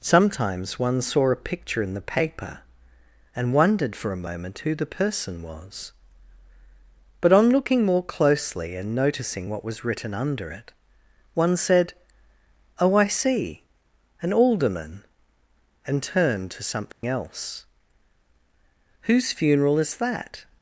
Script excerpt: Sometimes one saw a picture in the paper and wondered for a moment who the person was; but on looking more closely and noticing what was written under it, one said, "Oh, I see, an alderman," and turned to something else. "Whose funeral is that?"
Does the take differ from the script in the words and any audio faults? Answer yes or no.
yes